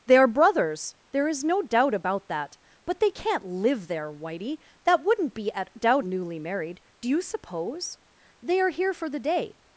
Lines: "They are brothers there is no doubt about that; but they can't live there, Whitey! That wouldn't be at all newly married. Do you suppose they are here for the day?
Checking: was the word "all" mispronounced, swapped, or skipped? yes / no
yes